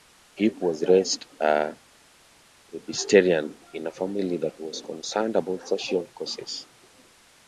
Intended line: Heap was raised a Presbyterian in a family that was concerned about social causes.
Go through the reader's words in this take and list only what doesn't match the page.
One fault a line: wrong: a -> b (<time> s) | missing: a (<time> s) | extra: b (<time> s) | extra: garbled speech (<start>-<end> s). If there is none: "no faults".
no faults